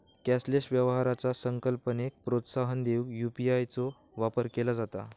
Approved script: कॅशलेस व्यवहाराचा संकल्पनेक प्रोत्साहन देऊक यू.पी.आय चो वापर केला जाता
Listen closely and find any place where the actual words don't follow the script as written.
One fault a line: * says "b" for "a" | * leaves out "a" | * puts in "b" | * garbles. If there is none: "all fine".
all fine